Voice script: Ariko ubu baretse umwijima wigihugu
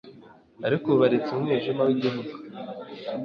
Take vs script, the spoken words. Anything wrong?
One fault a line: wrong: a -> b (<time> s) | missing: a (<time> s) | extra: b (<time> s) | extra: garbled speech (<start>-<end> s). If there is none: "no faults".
no faults